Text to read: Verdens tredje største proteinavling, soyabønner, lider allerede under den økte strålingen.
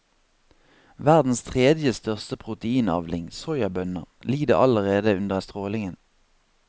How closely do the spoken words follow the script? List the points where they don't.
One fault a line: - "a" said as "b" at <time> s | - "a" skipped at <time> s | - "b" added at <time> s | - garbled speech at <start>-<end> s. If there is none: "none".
- "den økte" skipped at 5.4 s